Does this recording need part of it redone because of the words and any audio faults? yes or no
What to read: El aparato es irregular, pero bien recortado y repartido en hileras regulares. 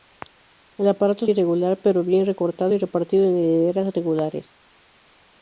no